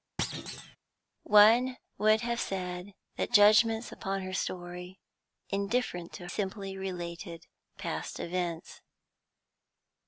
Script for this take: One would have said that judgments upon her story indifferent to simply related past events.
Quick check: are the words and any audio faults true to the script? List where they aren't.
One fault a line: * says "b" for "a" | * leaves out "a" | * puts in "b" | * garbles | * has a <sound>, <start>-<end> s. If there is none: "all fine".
* has a thud, 0.2-0.8 s